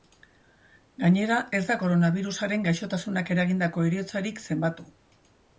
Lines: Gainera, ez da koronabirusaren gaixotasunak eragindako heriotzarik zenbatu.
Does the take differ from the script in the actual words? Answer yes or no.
no